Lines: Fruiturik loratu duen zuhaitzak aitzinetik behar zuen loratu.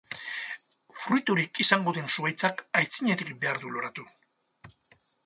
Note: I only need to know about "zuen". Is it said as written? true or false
false